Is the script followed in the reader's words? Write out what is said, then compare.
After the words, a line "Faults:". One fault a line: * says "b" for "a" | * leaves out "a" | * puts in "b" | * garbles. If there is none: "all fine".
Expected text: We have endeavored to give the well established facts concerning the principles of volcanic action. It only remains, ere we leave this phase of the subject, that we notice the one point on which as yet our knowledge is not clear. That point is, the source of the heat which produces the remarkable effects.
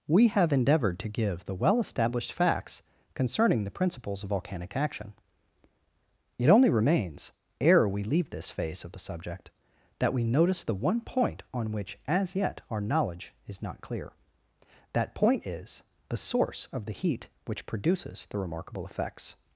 We have endeavored to give the well established facts concerning the principles of volcanic action. It only remains, ere we leave this phase of the subject, that we notice the one point on which as yet our knowledge is not clear. That point is, the source of the heat which produces the remarkable effects.
Faults:
all fine